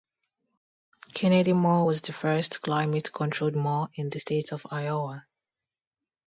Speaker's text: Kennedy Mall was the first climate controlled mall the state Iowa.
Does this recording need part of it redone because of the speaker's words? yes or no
yes